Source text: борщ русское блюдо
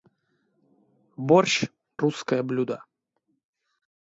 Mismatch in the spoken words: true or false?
false